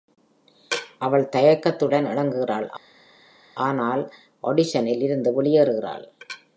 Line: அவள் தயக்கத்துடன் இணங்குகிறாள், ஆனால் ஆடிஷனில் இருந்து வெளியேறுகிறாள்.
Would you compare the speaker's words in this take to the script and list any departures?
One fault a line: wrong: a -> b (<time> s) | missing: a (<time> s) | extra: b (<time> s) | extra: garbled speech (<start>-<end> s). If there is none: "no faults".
no faults